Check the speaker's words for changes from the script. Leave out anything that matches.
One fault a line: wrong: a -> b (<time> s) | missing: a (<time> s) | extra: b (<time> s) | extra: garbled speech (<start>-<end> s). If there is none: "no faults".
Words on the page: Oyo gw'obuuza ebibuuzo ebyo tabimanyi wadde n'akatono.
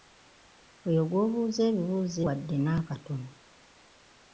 missing: ebyo tabimanyi (2.2 s)